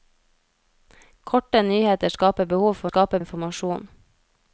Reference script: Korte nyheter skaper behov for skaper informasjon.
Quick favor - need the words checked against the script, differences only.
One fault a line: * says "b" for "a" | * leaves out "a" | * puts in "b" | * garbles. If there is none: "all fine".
all fine